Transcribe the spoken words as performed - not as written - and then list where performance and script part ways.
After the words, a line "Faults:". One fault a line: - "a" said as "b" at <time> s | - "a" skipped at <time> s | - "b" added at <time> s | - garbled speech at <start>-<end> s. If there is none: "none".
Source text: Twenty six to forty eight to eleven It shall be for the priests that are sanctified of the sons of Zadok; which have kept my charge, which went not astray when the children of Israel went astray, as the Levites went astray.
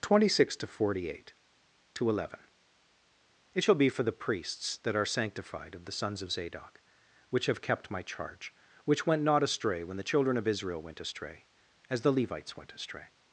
Twenty six to forty eight to eleven It shall be for the priests that are sanctified of the sons of Zadok; which have kept my charge, which went not astray when the children of Israel went astray, as the Levites went astray.
Faults:
none